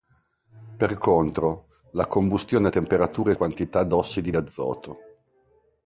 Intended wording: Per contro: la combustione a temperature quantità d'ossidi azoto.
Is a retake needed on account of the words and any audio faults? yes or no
no